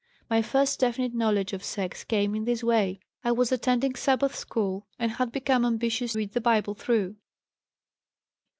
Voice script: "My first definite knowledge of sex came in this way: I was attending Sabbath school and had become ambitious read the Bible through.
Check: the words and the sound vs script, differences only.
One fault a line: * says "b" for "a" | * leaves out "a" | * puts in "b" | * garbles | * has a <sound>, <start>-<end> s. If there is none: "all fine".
all fine